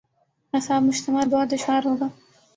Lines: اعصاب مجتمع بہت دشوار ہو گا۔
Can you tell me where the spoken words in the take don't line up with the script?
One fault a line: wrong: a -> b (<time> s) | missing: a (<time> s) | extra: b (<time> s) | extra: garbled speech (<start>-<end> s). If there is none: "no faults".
no faults